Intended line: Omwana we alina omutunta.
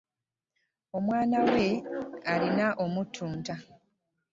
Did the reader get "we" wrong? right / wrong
right